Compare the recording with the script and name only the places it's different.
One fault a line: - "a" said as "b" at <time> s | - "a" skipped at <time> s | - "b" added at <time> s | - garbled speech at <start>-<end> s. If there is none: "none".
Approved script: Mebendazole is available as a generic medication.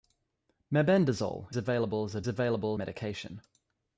- "is" skipped at 1.6 s
- "generic" said as "available" at 2.3 s